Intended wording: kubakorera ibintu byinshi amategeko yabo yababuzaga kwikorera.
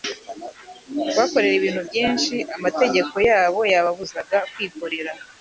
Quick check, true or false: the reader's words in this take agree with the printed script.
true